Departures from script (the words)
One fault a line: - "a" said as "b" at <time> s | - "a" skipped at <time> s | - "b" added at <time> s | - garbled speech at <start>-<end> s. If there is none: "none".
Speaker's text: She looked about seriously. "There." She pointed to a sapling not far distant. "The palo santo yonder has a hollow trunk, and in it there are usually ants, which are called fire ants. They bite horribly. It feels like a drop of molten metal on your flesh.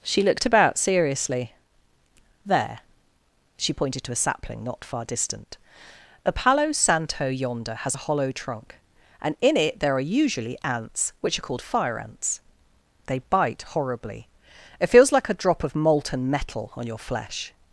- "The" said as "A" at 6.2 s